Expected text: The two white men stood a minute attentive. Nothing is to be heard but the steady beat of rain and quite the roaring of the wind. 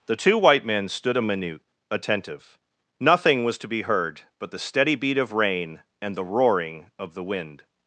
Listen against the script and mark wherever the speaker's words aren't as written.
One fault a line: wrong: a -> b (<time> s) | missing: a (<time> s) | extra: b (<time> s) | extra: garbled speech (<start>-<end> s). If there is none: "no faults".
wrong: is -> was (3.4 s)
missing: quite (6.2 s)